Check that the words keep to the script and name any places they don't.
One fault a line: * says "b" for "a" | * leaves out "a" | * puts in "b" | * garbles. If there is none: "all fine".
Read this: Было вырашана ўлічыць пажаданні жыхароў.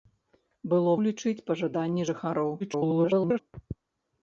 * leaves out "вырашана"
* garbles